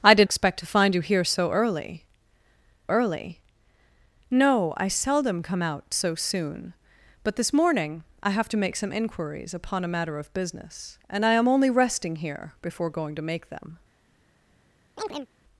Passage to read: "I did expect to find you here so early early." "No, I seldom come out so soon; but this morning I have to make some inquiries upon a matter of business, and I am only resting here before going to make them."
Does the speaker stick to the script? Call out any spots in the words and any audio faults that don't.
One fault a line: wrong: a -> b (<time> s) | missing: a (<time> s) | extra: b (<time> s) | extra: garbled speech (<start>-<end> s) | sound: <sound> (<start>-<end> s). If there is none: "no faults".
sound: chirp (15.0-15.3 s)